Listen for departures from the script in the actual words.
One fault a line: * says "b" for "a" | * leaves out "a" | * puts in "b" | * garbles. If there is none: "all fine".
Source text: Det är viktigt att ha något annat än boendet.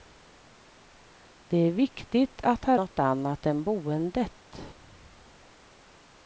all fine